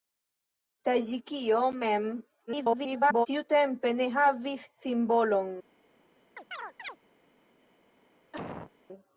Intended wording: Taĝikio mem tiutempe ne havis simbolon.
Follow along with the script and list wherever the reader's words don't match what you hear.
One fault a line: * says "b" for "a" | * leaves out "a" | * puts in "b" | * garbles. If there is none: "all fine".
* garbles